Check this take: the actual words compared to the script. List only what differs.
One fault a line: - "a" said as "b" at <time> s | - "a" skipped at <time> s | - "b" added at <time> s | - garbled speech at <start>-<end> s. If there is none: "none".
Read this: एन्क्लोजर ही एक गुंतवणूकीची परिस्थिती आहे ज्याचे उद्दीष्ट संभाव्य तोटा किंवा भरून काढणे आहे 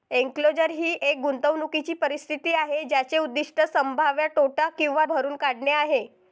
none